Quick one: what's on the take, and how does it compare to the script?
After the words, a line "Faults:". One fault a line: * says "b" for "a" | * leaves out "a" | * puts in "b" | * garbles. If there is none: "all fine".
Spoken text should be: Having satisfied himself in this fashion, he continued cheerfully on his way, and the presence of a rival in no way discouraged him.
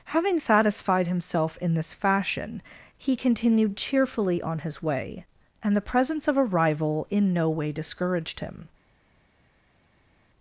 Having satisfied himself in this fashion, he continued cheerfully on his way, and the presence of a rival in no way discouraged him.
Faults:
all fine